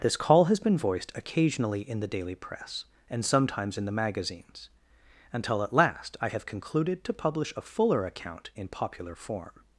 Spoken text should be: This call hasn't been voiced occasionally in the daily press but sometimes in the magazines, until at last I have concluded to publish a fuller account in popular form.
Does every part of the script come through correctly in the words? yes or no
no